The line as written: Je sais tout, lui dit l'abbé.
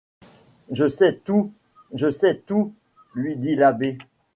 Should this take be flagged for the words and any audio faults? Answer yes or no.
yes